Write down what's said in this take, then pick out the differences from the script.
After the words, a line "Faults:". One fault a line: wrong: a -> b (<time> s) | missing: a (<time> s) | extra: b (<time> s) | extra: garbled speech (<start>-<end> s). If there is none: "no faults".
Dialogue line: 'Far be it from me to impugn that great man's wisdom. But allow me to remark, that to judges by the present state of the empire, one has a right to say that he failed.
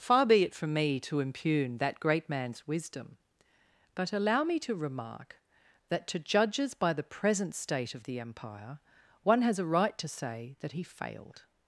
'Far be it from me to impugn that great man's wisdom. But allow me to remark, that to judges by the present state of the empire, one has a right to say that he failed.
Faults:
no faults